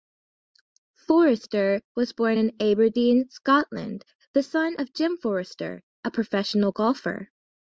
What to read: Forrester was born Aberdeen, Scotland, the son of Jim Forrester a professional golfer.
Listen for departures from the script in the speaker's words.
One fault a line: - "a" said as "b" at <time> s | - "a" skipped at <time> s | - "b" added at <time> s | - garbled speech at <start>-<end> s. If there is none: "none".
- "in" added at 2.4 s